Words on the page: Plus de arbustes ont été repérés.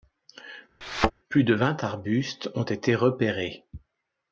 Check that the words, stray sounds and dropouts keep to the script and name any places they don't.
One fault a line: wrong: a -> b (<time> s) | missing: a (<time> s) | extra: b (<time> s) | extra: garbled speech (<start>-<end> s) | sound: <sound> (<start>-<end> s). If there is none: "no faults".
sound: thud (0.8-1.1 s)
extra: vingt (1.5 s)